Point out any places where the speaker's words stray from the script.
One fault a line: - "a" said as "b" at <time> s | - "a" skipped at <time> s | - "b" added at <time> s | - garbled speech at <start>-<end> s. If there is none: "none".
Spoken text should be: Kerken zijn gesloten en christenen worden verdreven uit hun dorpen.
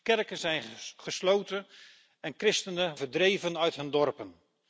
- "worden" skipped at 3.0 s